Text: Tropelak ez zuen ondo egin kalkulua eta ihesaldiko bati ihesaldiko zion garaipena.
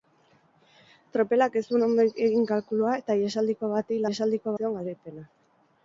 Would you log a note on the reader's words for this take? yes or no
no